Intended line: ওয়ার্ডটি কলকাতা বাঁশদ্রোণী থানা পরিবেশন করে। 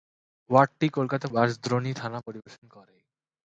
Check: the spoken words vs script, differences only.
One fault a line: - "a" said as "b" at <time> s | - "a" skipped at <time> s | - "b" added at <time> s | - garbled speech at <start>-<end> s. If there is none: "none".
none